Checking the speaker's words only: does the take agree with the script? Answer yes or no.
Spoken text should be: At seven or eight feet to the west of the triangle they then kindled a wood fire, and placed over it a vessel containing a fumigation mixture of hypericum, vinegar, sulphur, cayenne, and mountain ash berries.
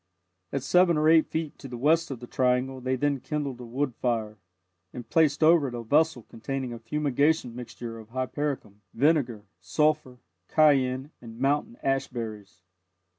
yes